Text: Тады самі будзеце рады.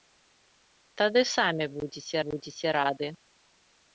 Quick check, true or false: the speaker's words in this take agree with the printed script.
false